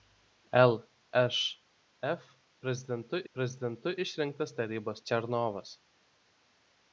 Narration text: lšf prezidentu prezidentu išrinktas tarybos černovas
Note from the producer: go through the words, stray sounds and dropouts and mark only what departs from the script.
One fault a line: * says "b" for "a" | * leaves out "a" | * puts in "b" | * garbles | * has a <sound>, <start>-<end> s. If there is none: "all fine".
all fine